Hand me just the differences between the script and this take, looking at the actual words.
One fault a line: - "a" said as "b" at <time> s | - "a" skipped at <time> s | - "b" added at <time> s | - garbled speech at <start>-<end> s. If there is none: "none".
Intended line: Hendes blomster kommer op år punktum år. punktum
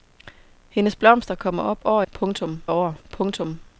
none